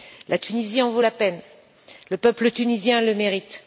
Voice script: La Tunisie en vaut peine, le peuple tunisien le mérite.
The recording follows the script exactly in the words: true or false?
false